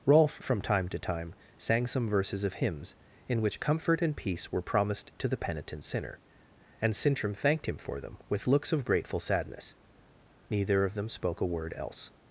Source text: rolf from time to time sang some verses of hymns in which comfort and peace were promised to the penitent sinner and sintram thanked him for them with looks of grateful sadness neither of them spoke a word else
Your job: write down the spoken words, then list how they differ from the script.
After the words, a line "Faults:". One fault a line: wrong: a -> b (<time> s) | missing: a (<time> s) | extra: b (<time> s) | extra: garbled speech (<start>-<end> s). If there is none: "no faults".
rolf from time to time sang some verses of hymns in which comfort and peace were promised to the penitent sinner and sintram thanked him for them with looks of grateful sadness neither of them spoke a word else
Faults:
no faults